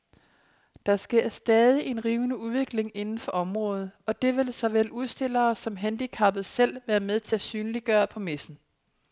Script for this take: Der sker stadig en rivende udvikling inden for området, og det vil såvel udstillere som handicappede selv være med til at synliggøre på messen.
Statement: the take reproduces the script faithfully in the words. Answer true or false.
true